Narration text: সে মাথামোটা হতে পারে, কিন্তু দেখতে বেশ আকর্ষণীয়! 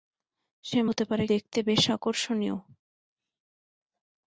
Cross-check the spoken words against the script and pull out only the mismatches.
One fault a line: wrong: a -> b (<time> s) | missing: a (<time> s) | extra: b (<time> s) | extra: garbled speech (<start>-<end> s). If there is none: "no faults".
missing: মাথামোটা (0.8 s)
missing: কিন্তু (1.2 s)